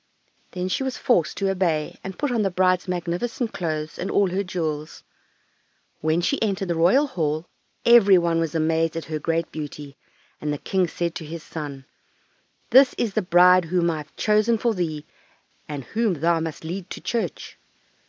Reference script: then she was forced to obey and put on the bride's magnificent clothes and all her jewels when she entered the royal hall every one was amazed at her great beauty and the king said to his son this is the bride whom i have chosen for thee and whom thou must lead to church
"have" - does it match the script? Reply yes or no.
yes